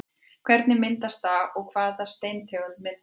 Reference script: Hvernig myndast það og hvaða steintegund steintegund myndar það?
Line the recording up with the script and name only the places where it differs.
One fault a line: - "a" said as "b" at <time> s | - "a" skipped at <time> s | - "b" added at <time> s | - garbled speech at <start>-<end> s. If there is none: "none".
- "steintegund" skipped at 2.8 s